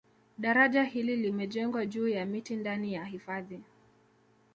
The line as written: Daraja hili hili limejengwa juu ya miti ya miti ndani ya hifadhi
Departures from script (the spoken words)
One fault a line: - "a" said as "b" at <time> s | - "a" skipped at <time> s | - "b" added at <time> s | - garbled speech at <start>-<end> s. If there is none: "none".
- "hili" skipped at 1.1 s
- "ya miti" skipped at 2.6 s